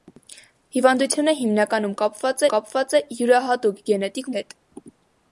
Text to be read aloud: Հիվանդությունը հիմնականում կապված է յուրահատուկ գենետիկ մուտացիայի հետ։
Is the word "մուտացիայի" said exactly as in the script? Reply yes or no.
no